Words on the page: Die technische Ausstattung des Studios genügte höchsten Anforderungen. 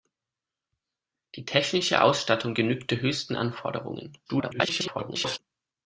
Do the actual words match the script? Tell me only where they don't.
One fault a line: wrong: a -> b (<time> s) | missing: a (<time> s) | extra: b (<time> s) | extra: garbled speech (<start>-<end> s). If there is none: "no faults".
missing: des Studios (2.6 s)
extra: garbled speech (4.3-5.4 s)